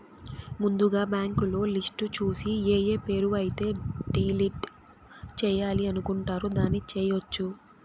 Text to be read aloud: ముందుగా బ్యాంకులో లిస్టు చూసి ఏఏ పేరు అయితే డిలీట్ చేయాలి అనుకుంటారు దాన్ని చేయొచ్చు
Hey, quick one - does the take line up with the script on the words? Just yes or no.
yes